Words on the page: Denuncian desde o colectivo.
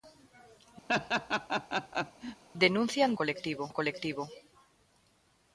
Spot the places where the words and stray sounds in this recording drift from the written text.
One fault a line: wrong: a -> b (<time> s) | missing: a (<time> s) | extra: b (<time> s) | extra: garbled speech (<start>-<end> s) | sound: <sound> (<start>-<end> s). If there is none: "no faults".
sound: laugh (0.9-2.4 s)
wrong: desde -> colectivo (3.2 s)